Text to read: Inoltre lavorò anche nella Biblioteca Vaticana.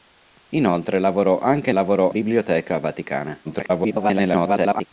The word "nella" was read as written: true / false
false